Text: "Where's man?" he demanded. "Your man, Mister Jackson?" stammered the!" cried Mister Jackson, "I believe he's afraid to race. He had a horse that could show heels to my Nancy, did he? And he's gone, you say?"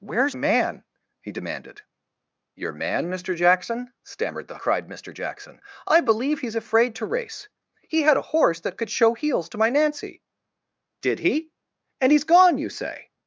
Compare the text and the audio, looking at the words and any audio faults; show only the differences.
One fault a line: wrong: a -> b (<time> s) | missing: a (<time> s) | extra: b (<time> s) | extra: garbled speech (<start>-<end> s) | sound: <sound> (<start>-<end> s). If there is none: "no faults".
no faults